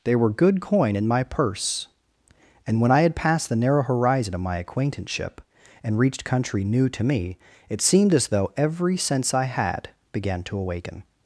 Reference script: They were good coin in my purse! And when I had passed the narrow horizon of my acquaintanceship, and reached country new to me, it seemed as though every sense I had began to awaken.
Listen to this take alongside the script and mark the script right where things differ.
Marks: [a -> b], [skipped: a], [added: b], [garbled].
They were good coin in my purse! And when I had passed the narrow horizon of my acquaintanceship, and reached country new to me, it seemed as though every sense I had began to awaken.